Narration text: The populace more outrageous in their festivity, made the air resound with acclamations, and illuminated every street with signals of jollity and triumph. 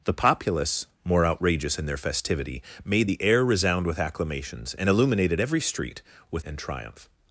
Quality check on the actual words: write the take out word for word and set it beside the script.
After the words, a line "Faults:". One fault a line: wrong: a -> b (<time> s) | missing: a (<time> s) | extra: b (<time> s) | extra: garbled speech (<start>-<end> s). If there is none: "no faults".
The populace more outrageous in their festivity, made the air resound with acclamations, and illuminated every street with and triumph.
Faults:
missing: signals of jollity (6.4 s)